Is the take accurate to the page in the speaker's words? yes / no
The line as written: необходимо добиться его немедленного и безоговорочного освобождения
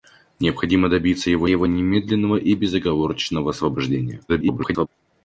no